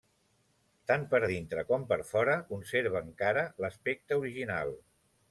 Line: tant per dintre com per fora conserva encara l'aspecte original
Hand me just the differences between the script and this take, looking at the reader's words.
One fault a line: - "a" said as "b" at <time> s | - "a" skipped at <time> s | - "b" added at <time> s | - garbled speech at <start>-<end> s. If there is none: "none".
none